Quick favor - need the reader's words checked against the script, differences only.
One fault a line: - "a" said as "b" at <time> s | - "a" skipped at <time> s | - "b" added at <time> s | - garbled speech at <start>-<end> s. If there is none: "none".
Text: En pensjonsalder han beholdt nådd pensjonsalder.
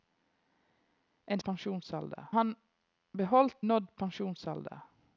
none